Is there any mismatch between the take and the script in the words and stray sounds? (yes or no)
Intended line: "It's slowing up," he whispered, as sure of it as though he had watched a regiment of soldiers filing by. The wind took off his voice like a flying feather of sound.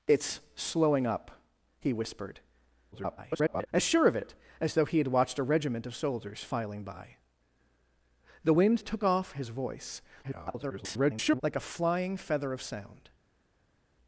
yes